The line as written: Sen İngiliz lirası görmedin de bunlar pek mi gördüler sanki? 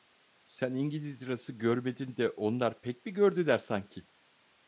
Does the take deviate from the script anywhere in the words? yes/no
yes